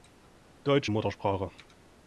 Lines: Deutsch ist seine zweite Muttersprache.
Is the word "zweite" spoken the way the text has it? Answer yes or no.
no